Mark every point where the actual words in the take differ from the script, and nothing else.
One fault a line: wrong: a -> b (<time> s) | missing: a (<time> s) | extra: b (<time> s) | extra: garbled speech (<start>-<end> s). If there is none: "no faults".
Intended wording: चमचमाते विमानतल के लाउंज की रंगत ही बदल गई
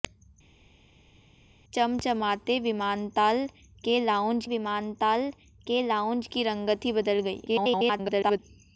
extra: विमानतल के लाउंज (4.5 s)
extra: garbled speech (7.5-8.4 s)